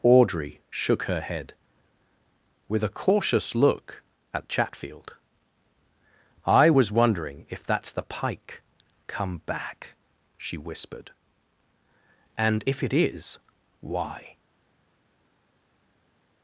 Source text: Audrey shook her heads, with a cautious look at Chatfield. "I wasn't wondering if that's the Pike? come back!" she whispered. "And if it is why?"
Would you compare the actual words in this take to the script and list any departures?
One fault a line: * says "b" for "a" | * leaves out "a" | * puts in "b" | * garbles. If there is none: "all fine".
* says "head" for "heads"
* says "was" for "wasn't"